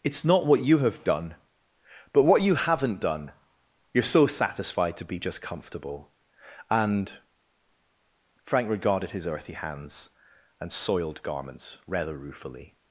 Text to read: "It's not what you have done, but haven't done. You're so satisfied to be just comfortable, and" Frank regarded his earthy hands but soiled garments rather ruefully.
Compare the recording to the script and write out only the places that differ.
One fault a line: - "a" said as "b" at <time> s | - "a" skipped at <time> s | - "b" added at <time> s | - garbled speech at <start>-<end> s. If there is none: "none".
- "what you" added at 2.2 s
- "but" said as "and" at 10.6 s